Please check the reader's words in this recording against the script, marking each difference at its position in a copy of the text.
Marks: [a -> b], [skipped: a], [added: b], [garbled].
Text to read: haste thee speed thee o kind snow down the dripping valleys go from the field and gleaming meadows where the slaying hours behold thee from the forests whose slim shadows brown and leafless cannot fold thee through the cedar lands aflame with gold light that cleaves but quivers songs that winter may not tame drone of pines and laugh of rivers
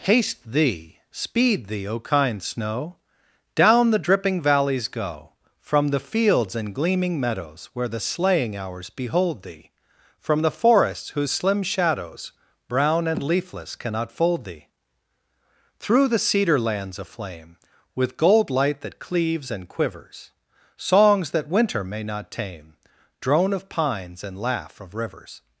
haste thee speed thee o kind snow down the dripping valleys go from the [field -> fields] and gleaming meadows where the slaying hours behold thee from the forests whose slim shadows brown and leafless cannot fold thee through the cedar lands aflame with gold light that cleaves [but -> and] quivers songs that winter may not tame drone of pines and laugh of rivers